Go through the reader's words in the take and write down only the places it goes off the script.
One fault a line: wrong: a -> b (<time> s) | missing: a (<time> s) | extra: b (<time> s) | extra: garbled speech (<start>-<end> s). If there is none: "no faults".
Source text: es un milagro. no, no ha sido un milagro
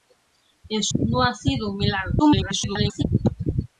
missing: un milagro no (0.9 s)
extra: garbled speech (2.2-3.0 s)